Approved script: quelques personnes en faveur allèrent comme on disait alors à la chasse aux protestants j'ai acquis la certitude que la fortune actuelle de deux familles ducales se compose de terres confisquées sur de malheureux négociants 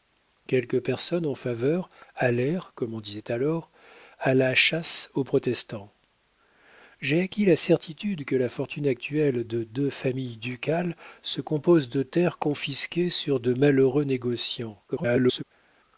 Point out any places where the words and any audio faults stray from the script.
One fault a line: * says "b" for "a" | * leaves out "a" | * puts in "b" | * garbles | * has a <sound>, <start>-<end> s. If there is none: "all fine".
* garbles